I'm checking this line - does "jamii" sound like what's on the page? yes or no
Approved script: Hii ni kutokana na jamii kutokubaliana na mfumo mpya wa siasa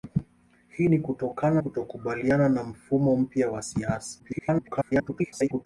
no